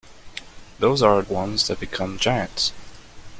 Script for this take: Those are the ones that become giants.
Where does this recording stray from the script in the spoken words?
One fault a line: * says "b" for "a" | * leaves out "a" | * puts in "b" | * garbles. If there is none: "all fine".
* leaves out "the"